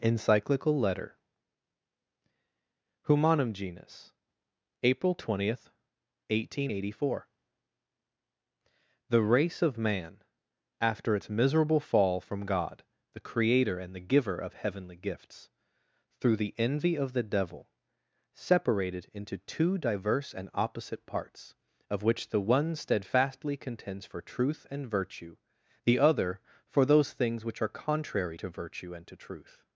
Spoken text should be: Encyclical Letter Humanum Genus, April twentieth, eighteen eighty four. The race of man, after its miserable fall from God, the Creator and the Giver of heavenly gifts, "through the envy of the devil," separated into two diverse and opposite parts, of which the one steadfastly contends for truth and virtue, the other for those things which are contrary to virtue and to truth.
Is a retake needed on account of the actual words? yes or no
no